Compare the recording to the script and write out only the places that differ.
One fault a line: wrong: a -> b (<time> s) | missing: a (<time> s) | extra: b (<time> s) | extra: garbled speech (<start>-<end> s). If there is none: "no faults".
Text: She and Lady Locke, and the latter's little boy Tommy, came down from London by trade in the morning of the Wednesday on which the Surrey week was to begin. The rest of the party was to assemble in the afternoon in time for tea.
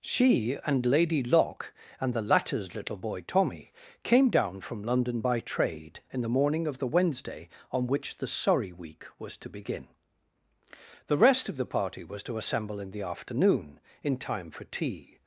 no faults